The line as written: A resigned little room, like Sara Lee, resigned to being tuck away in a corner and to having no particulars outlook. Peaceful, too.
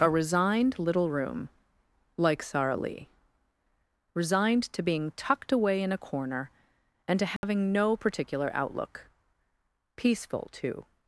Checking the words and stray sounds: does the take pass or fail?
fail